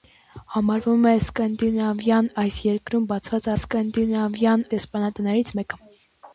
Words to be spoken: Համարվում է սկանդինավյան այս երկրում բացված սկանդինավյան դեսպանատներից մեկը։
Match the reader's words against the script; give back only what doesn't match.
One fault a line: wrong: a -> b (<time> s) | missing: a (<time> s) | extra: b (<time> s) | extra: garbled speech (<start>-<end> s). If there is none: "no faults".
no faults